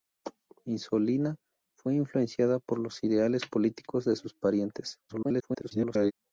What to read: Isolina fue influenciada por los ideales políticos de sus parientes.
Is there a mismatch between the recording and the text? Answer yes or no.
yes